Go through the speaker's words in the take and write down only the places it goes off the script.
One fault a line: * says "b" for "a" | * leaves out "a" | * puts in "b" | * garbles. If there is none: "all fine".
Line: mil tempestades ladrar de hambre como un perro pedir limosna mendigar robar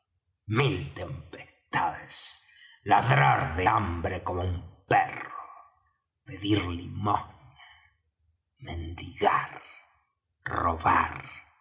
all fine